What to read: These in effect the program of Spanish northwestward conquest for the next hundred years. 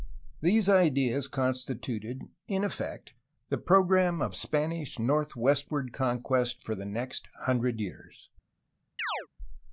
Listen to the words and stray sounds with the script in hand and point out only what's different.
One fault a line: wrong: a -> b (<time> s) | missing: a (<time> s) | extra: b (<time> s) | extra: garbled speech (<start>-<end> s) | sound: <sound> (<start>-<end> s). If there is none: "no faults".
extra: ideas constituted (0.7 s)
sound: chirp (9.0-9.3 s)